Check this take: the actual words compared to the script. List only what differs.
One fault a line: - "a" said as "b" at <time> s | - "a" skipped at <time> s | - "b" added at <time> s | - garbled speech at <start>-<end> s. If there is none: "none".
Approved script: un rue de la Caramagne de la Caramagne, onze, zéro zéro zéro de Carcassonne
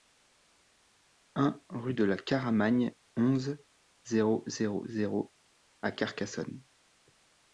- "de la Caramagne" skipped at 3.0 s
- "de" said as "à" at 5.8 s